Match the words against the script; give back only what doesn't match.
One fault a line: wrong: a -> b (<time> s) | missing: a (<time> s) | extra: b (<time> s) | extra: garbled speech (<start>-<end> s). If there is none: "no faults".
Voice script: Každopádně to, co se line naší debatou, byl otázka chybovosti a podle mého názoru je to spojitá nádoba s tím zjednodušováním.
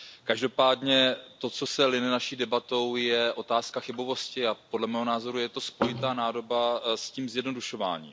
wrong: byl -> je (3.0 s)